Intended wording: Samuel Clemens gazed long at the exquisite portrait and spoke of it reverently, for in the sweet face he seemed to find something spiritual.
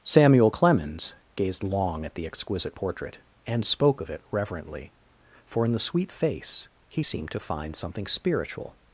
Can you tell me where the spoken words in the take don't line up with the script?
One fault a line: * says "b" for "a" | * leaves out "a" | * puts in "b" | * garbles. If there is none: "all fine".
all fine